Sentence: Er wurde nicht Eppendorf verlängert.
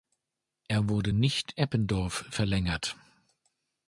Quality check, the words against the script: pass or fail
pass